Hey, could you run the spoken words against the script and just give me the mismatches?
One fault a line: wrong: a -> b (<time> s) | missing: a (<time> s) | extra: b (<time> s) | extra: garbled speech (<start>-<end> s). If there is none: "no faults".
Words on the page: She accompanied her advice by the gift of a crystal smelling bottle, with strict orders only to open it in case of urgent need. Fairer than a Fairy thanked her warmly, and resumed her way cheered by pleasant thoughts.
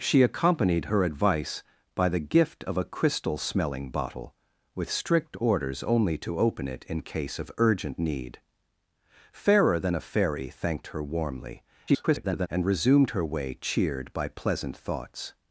extra: garbled speech (11.9-12.5 s)